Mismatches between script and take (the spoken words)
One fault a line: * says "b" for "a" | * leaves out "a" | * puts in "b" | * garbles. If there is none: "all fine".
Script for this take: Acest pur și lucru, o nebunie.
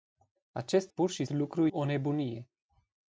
all fine